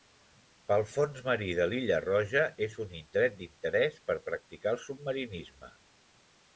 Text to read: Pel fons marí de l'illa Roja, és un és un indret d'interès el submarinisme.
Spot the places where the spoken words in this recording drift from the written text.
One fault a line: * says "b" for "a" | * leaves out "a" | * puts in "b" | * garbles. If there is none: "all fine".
* says "indret d'interès per practicar" for "és un indret d'interès"